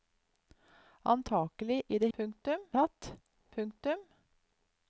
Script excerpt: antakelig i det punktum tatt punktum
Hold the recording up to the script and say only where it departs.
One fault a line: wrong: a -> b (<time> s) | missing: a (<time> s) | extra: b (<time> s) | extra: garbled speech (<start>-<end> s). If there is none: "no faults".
no faults